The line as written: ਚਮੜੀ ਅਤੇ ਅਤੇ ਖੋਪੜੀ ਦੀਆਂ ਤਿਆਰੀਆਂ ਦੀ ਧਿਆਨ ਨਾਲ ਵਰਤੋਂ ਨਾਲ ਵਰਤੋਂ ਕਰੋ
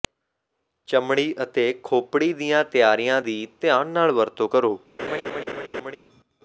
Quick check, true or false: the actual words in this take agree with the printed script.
false